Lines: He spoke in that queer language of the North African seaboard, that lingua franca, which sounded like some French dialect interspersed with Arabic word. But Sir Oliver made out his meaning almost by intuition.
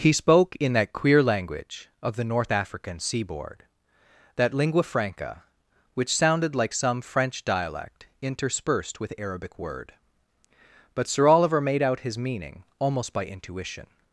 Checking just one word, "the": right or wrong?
right